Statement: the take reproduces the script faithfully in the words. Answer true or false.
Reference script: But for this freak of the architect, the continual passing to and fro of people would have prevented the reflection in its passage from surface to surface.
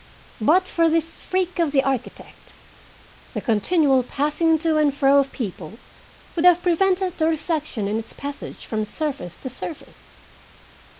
true